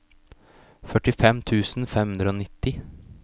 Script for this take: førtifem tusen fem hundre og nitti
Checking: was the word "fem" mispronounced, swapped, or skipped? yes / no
no